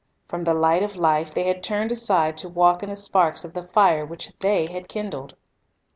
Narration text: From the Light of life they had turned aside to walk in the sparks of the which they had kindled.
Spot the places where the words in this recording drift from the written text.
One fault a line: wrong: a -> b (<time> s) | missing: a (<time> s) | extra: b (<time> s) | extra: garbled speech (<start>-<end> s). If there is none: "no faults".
extra: fire (3.6 s)